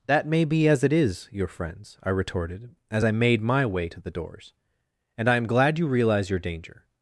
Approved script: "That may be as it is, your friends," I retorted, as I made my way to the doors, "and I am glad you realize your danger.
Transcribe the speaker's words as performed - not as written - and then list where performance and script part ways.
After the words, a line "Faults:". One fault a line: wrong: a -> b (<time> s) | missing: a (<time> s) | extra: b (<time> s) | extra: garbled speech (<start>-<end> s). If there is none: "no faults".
"That may be as it is, your friends," I retorted, as I made my way to the doors, "and I am glad you realize your danger.
Faults:
no faults